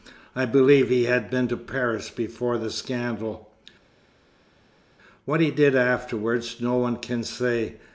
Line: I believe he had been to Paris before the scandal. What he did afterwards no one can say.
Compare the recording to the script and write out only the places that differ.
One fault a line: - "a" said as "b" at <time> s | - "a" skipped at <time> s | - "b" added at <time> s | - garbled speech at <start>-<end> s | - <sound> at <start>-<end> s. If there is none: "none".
none